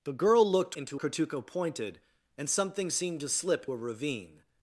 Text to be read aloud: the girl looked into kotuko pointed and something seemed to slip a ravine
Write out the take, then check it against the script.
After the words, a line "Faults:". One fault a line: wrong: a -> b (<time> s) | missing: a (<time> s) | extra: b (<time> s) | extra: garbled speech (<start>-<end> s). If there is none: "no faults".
the girl looked into kotuko pointed and something seemed to slip a ravine
Faults:
no faults